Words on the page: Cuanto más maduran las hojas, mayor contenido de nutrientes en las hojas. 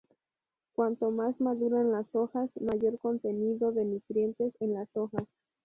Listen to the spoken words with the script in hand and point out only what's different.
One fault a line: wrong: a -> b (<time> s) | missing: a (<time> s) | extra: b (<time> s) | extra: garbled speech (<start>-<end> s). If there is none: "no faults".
no faults